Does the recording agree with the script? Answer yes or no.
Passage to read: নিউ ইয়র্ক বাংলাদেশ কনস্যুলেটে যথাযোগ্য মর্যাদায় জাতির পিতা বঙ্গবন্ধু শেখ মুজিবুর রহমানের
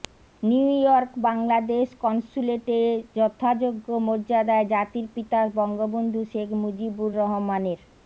yes